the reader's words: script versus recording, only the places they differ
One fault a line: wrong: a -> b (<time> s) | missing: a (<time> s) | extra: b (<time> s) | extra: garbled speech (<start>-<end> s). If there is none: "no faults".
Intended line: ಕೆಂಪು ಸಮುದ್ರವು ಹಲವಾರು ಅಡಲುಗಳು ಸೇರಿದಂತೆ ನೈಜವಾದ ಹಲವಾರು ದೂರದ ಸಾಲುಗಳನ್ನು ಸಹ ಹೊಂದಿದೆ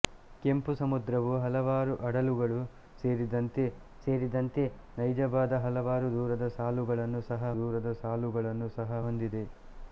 extra: ಸೇರಿದಂತೆ (4.0 s)
extra: ದೂರದ ಸಾಲುಗಳನ್ನು ಸಹ (7.6 s)